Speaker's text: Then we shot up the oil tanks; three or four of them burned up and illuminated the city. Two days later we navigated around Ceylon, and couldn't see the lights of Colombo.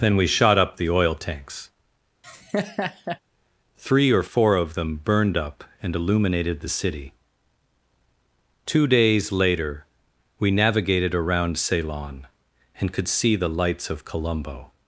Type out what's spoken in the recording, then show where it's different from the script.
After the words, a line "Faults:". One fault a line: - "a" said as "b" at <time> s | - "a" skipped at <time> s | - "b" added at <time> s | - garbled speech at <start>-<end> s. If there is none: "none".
Then we shot up the oil tanks; three or four of them burned up and illuminated the city. Two days later we navigated around Ceylon, and could see the lights of Colombo.
Faults:
- "couldn't" said as "could" at 12.9 s